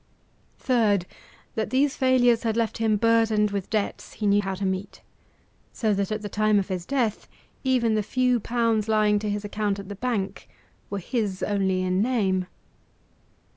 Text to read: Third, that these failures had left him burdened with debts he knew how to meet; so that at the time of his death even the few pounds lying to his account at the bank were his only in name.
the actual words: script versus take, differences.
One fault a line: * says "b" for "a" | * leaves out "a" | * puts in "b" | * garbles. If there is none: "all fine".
all fine